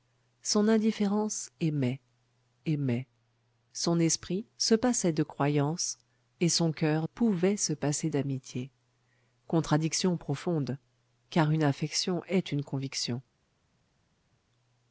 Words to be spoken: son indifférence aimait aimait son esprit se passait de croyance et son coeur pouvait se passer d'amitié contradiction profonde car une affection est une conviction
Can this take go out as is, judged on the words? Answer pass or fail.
pass